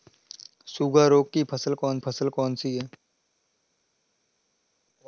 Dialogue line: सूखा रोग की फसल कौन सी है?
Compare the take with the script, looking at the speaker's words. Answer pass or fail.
fail